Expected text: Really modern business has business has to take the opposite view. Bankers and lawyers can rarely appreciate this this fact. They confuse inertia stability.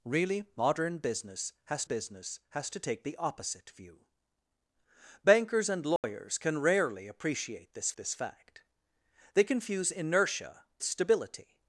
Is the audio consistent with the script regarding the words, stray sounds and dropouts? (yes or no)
no